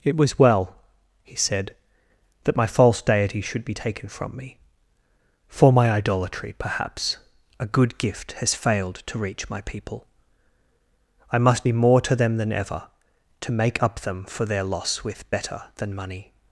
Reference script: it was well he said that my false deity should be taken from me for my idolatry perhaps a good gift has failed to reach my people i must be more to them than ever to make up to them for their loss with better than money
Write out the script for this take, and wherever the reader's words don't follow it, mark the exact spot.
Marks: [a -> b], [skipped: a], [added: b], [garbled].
it was well he said that my false deity should be taken from me for my idolatry perhaps a good gift has failed to reach my people i must be more to them than ever to make up [skipped: to] them for their loss with better than money